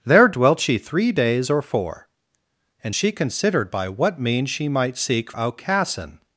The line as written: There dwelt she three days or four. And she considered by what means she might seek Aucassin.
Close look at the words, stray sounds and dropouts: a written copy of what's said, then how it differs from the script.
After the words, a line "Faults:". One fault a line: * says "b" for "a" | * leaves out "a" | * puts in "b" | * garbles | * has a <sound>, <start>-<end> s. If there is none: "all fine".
There dwelt she three days or four. And she considered by what means she might seek Aucassin.
Faults:
all fine